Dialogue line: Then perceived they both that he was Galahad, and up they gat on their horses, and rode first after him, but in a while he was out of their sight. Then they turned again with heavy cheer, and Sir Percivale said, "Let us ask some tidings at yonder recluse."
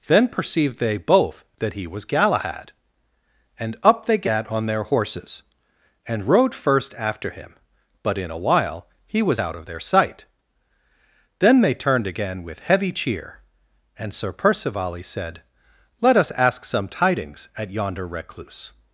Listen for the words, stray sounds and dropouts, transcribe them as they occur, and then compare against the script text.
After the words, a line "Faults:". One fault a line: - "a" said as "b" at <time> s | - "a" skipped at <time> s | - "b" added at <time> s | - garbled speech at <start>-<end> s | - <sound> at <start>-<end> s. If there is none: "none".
Then perceived they both that he was Galahad, and up they gat on their horses, and rode first after him, but in a while he was out of their sight. Then they turned again with heavy cheer, and Sir Percivale said, "Let us ask some tidings at yonder recluse."
Faults:
none